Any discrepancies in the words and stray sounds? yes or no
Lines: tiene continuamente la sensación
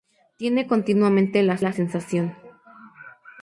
yes